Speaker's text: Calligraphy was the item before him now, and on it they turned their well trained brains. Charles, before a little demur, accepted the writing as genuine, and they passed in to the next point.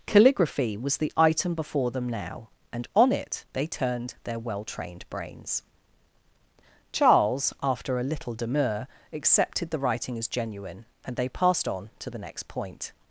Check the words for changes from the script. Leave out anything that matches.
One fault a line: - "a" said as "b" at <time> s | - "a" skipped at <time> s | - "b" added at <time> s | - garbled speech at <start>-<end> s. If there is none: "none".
- "him" said as "them" at 1.9 s
- "before" said as "after" at 7.6 s
- "in" said as "on" at 11.7 s